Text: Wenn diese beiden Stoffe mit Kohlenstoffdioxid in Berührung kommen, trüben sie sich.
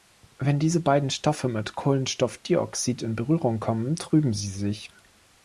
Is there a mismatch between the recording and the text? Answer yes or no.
no